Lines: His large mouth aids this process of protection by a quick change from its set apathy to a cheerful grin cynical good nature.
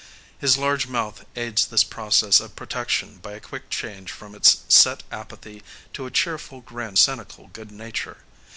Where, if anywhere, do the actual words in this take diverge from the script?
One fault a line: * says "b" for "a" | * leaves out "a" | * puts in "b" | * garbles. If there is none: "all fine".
all fine